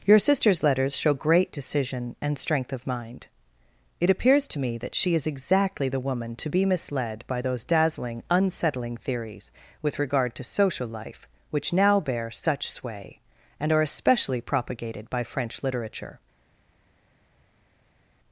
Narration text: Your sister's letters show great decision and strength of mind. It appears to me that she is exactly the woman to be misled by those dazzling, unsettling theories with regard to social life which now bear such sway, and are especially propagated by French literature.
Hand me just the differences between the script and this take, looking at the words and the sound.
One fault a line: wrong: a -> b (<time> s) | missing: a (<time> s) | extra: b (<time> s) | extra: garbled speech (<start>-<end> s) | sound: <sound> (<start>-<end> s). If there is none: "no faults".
no faults